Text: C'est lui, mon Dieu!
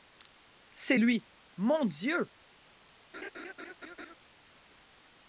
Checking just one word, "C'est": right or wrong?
right